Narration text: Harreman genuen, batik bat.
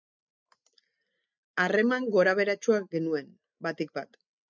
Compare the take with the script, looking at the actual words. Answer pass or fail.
fail